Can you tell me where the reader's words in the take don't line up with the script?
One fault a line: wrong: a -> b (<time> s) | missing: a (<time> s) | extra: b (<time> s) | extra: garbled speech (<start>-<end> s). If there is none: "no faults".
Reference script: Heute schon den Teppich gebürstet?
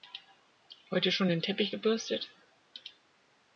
no faults